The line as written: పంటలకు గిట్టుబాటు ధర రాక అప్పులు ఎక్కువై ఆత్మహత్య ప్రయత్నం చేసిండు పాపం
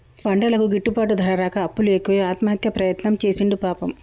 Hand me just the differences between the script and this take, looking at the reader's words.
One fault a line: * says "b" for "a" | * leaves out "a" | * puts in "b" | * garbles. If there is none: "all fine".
all fine